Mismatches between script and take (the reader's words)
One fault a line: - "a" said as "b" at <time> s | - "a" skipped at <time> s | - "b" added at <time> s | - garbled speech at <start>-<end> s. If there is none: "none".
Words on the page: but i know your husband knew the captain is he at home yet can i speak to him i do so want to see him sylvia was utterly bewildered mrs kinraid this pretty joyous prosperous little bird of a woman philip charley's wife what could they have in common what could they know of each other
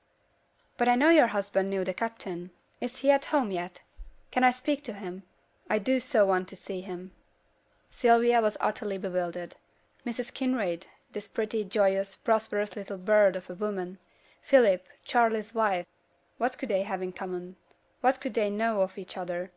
none